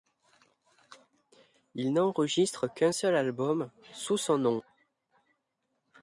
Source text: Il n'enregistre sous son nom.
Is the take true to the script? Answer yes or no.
no